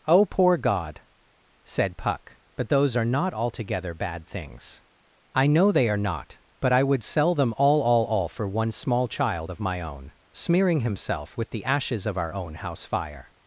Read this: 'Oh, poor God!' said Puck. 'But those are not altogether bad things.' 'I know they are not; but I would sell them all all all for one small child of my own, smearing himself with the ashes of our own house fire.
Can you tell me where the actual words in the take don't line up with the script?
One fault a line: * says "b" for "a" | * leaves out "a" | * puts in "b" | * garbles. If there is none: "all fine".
all fine